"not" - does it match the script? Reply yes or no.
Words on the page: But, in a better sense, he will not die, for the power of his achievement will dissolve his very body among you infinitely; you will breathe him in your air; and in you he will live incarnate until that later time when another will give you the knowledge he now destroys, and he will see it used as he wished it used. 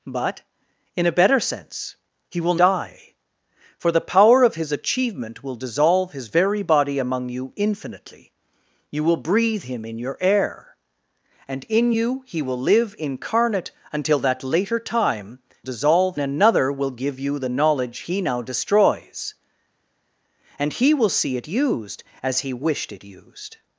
no